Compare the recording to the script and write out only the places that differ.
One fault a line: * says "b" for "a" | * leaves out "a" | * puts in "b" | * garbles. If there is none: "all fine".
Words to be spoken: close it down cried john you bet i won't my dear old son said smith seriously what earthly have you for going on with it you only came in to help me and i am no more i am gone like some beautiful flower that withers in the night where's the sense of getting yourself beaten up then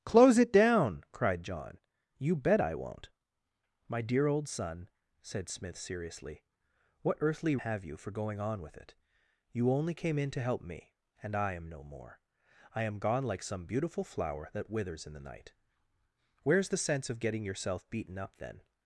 all fine